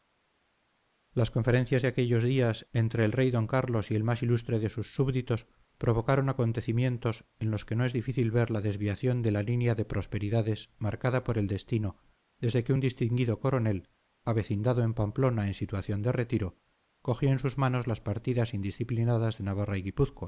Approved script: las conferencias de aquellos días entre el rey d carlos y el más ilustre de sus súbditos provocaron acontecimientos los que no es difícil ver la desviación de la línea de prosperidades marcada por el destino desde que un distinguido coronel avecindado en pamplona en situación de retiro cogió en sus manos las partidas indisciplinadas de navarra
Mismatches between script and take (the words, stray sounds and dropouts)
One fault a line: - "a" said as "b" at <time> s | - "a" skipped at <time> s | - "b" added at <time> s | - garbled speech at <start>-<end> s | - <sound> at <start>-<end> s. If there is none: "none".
- "en" added at 7.4 s